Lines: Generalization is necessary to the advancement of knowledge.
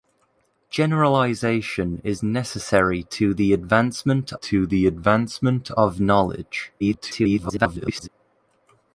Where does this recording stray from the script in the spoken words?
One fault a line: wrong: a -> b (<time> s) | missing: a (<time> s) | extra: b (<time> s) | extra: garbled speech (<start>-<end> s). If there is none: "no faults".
extra: to the advancement (4.3 s)
extra: garbled speech (6.8-8.1 s)